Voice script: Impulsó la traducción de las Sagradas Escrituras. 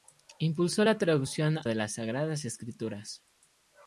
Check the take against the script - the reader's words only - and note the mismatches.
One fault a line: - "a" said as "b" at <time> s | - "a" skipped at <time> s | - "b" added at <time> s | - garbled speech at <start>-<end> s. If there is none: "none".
none